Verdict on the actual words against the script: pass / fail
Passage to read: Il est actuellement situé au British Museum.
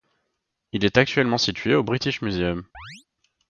pass